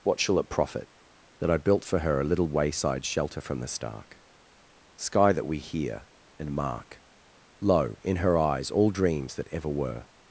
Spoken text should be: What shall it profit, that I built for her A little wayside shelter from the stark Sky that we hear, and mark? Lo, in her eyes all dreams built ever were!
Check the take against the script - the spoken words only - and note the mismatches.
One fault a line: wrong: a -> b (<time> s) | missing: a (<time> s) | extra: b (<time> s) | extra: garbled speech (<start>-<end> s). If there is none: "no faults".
wrong: built -> that (9.3 s)